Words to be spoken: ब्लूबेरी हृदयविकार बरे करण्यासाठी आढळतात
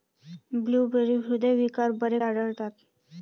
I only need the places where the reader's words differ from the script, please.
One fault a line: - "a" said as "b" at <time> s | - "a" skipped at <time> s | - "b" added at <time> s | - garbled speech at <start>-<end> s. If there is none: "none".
- "करण्यासाठी" skipped at 2.2 s